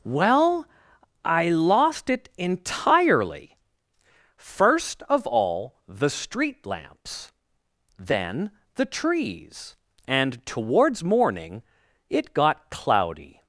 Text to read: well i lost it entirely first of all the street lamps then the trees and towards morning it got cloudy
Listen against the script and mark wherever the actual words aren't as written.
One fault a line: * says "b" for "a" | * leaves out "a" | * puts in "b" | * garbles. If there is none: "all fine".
all fine